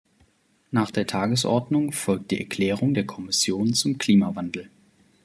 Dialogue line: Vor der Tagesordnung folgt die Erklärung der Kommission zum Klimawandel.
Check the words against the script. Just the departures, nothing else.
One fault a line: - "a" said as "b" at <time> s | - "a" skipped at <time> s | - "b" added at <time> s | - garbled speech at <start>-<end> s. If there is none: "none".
- "Vor" said as "Nach" at 0.7 s